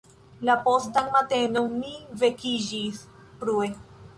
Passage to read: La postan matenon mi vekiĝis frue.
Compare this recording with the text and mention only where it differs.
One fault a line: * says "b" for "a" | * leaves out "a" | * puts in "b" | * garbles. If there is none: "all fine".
all fine